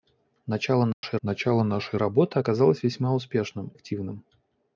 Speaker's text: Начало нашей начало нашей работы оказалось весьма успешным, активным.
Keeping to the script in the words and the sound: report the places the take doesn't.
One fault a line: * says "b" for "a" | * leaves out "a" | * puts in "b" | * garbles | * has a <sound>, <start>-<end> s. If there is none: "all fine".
* has a dropout, 0.9-1.0 s